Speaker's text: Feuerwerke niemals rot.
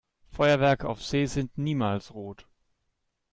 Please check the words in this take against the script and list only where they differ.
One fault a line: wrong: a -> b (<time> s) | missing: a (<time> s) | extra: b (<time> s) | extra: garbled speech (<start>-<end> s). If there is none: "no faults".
extra: auf See sind (0.9 s)